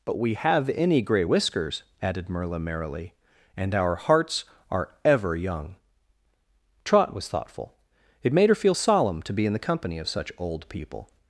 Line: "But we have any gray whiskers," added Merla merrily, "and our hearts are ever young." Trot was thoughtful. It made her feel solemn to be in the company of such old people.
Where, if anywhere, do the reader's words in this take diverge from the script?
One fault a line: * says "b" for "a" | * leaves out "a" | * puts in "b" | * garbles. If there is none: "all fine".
all fine